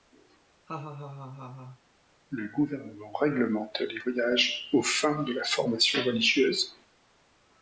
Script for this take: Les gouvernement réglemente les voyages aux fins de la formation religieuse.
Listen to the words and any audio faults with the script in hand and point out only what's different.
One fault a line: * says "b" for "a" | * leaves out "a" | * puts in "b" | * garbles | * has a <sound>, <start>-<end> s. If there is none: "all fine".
* has a laugh, 0.7-1.8 s
* says "Le" for "Les"